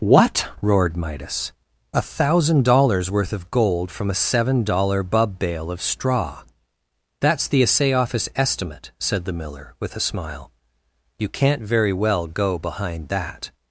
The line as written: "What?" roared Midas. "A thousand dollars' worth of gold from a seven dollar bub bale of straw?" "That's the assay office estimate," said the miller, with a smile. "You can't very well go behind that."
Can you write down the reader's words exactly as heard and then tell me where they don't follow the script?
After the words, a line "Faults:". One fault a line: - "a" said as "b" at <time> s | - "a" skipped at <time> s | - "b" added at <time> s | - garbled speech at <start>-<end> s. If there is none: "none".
"What?" roared Midas. "A thousand dollars' worth of gold from a seven dollar bub bale of straw?" "That's the assay office estimate," said the miller, with a smile. "You can't very well go behind that."
Faults:
none